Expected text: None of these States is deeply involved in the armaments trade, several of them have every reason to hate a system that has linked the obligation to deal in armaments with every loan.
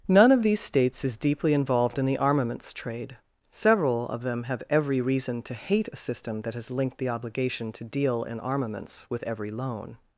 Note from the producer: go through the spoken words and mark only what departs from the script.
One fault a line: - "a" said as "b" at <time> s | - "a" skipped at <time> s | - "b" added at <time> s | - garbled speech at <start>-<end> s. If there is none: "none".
none